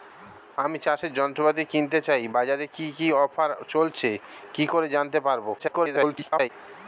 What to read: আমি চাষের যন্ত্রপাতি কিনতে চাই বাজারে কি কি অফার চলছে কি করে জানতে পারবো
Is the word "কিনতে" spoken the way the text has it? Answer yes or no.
yes